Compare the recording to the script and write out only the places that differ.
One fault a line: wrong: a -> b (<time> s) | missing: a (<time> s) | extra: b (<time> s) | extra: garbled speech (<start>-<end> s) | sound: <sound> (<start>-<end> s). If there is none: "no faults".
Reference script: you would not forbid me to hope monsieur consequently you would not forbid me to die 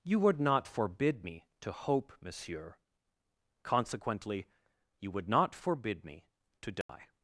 sound: dropout (6.8-6.9 s)